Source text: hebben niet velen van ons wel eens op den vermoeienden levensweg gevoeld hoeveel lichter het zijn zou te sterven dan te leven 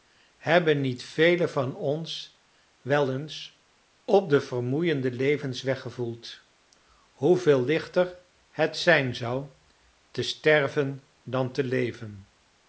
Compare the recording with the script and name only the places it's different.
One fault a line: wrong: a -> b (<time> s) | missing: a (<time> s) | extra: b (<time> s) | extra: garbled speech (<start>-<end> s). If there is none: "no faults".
no faults